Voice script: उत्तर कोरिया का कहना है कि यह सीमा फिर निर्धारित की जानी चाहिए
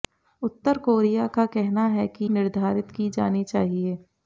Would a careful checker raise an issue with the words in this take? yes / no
yes